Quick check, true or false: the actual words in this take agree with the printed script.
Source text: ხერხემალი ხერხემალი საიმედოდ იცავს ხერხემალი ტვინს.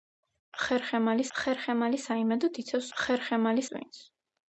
true